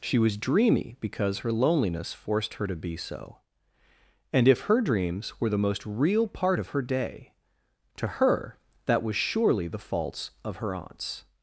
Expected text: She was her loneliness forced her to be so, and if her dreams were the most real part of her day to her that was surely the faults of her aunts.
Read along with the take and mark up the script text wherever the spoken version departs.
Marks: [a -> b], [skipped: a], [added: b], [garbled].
She was [added: dreamy because] her loneliness forced her to be so, and if her dreams were the most real part of her day to her that was surely the faults of her aunts.